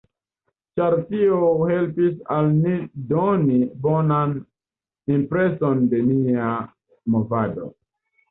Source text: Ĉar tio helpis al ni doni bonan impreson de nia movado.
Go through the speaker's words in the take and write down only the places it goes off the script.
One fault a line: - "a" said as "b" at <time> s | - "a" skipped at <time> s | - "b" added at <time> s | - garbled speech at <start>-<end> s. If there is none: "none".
none